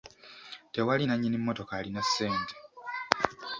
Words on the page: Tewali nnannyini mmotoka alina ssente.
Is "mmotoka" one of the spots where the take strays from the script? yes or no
no